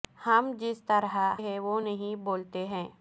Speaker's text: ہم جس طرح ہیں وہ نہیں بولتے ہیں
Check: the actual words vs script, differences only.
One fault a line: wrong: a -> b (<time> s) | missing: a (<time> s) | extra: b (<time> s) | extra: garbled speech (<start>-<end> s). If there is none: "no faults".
no faults